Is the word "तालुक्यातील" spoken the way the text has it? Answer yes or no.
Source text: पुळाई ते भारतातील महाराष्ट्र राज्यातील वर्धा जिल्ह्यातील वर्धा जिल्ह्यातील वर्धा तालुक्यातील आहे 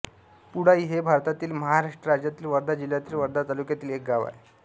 no